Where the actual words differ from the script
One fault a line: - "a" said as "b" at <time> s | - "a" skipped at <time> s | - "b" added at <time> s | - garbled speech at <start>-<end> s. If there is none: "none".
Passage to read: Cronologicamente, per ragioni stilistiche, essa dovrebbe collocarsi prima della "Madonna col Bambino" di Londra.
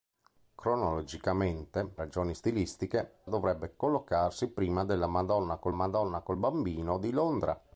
- "per" skipped at 1.9 s
- "essa" skipped at 3.2 s
- "madonna col" added at 5.7 s